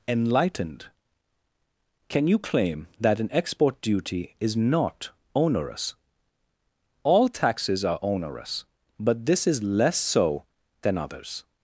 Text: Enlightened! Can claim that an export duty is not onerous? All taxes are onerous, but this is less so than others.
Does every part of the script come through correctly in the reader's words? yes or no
no